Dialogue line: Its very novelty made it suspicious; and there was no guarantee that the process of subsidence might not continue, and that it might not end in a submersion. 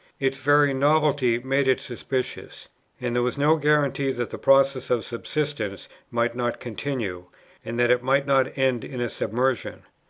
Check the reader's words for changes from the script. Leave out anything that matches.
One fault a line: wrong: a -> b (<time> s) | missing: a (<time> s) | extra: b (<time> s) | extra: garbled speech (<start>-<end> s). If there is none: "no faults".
no faults